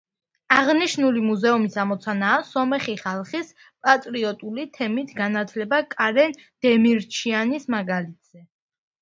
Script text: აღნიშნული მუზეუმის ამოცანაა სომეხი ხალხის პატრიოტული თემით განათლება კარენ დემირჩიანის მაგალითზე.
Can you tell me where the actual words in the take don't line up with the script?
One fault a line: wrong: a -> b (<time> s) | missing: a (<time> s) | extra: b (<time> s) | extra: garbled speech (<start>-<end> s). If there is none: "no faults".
no faults